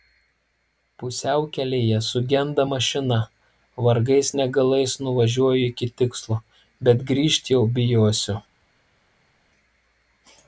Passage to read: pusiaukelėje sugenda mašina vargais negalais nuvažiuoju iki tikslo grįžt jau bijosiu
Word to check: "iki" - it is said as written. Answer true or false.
true